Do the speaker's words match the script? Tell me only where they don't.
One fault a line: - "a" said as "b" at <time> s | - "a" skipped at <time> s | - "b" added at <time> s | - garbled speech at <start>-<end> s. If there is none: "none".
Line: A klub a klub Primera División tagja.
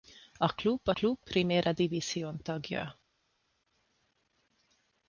none